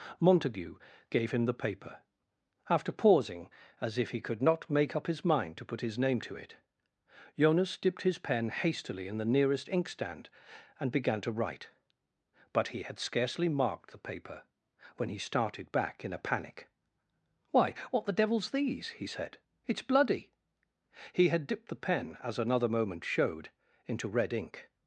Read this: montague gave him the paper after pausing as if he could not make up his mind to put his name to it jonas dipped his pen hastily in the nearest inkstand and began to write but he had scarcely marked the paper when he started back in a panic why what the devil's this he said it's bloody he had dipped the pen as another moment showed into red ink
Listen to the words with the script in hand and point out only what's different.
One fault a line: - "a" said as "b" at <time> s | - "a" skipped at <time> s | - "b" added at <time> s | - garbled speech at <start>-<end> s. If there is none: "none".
- "this" said as "these" at 18.5 s